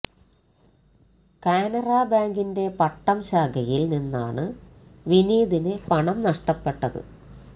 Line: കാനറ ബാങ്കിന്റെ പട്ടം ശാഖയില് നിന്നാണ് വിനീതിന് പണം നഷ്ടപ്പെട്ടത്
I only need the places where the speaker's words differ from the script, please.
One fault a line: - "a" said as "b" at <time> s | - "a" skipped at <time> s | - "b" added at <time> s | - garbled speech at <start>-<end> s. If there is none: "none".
none